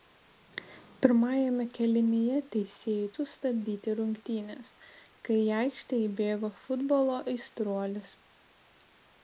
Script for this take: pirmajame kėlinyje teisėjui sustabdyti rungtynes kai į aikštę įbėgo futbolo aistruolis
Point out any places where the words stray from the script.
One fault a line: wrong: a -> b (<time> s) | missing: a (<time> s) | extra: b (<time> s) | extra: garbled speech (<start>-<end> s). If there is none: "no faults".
no faults